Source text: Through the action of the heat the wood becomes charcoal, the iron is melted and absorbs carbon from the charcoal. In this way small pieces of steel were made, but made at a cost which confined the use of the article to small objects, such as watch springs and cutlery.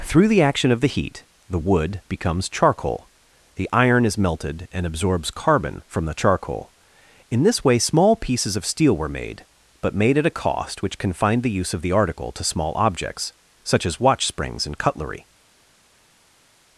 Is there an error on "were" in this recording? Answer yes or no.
no